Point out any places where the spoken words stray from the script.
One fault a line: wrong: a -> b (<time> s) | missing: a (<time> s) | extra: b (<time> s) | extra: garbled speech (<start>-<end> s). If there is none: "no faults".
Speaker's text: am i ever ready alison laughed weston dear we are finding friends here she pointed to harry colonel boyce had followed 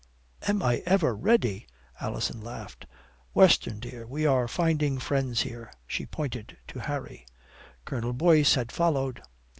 no faults